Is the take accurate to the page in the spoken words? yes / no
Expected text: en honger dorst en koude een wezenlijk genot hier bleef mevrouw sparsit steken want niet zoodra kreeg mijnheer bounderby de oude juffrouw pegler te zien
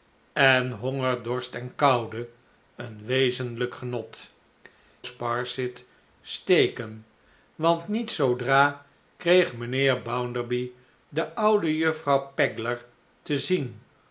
no